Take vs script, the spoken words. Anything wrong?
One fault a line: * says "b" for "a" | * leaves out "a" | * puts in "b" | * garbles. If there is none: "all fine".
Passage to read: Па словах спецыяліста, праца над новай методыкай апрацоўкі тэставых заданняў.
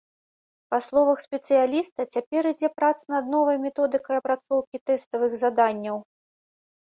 * puts in "цяпер ідзе"